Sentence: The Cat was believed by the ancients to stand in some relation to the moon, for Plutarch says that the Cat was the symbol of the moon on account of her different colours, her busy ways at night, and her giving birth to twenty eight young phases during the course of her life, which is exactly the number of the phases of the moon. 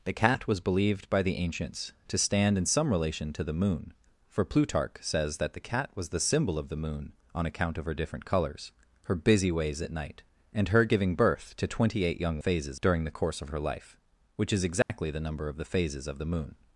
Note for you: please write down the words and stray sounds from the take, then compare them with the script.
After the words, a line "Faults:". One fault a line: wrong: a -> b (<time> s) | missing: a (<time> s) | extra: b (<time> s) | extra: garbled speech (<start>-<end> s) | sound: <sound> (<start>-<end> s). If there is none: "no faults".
The Cat was believed by the ancients to stand in some relation to the moon, for Plutarch says that the Cat was the symbol of the moon on account of her different colours, her busy ways at night, and her giving birth to twenty eight young phases during the course of her life, which is exactly the number of the phases of the moon.
Faults:
sound: dropout (14.8-14.9 s)